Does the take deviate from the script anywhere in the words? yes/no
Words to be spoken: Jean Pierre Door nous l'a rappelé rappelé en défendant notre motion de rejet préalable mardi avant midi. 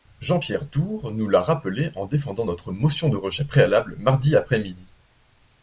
yes